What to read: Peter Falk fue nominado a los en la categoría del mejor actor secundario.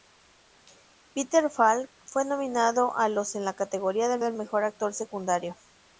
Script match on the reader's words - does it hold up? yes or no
no